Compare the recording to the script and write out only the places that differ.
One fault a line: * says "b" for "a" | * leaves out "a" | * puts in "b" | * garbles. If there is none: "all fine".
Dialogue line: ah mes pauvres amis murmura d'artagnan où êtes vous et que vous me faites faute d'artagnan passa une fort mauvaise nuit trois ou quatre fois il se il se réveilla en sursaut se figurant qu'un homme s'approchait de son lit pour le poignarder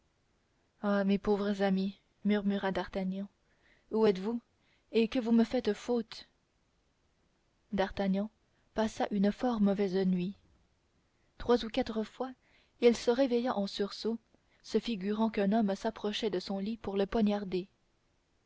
* leaves out "il se"